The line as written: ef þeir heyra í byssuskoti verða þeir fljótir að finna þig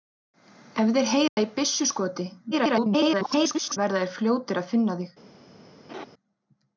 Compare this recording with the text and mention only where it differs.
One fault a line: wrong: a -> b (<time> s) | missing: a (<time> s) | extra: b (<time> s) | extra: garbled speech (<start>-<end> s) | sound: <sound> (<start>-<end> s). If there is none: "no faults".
sound: dropout (1.3-1.4 s)
extra: garbled speech (2.5-3.8 s)
sound: laugh (5.9-6.1 s)